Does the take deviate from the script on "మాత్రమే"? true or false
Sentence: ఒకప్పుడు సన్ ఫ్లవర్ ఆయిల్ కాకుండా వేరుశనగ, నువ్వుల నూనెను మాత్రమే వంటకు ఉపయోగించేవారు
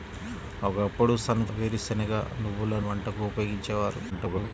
true